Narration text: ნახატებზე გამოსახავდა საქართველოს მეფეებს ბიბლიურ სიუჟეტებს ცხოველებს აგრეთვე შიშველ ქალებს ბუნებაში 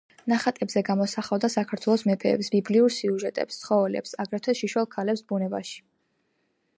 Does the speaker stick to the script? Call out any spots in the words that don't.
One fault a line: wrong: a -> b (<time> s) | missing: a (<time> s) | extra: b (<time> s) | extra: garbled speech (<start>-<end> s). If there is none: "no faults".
no faults